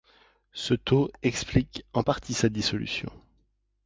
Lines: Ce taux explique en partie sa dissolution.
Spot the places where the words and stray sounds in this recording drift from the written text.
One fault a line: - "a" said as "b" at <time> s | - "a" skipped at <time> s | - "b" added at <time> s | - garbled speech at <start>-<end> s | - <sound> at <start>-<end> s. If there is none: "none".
none